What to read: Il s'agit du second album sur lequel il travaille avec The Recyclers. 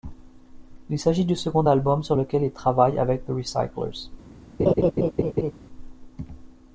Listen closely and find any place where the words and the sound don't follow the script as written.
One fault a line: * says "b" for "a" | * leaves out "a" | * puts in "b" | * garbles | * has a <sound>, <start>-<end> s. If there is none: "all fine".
* has a laugh, 4.6-5.5 s